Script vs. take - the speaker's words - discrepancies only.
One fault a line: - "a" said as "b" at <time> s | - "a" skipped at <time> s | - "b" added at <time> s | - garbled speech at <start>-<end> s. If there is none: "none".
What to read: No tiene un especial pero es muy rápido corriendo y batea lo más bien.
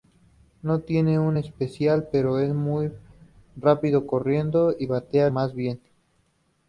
- "lo" skipped at 5.3 s